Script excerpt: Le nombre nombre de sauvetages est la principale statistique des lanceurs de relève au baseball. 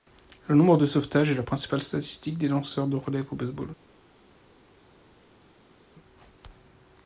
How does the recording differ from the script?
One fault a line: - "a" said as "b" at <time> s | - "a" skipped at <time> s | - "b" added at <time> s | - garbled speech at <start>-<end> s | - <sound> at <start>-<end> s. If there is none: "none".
- "nombre" skipped at 0.8 s